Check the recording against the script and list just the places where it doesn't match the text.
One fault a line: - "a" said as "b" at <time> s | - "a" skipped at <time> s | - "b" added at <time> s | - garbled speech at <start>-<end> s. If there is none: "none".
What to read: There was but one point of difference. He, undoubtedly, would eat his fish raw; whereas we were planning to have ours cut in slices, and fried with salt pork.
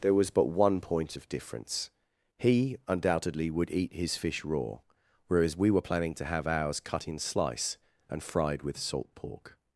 - "slices" said as "slice" at 7.2 s